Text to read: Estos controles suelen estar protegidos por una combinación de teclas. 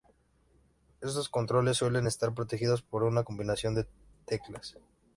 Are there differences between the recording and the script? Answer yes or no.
no